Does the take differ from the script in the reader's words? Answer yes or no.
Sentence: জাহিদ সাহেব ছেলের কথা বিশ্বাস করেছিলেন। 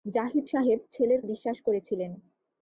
yes